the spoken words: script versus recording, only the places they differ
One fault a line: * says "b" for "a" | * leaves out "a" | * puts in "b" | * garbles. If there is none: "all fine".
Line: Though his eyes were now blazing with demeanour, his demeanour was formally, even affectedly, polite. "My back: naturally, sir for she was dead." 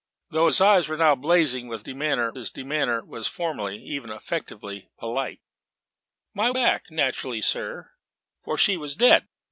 all fine